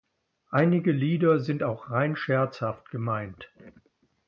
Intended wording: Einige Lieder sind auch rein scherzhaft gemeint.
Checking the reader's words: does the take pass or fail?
pass